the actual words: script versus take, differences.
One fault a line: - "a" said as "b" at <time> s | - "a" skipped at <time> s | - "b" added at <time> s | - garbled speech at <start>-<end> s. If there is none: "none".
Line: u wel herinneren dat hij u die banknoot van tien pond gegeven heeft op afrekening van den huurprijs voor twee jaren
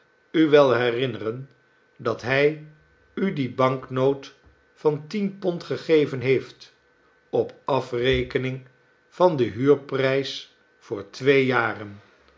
none